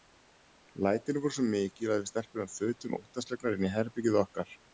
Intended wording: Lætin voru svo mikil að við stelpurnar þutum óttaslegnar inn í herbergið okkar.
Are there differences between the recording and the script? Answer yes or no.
no